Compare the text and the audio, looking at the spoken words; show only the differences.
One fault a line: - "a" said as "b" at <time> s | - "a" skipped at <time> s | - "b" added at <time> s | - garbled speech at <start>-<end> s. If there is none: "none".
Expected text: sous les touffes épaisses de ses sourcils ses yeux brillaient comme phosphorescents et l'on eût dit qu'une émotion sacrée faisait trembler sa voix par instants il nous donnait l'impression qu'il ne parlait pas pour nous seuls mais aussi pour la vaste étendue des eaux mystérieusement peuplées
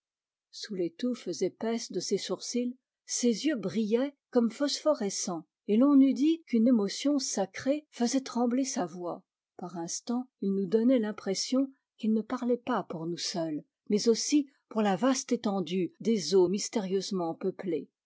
none